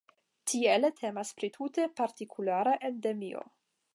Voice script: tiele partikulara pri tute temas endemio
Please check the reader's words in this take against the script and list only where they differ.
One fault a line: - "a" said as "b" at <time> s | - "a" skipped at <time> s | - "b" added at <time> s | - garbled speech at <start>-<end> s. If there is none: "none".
- "partikulara" said as "temas" at 1.0 s
- "temas" said as "partikulara" at 2.0 s